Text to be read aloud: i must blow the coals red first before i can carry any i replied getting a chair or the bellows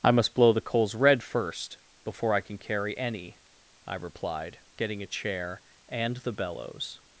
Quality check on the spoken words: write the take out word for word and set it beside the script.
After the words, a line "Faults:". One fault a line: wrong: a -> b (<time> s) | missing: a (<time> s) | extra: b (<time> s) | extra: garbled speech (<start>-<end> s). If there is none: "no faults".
i must blow the coals red first before i can carry any i replied getting a chair and the bellows
Faults:
wrong: or -> and (5.9 s)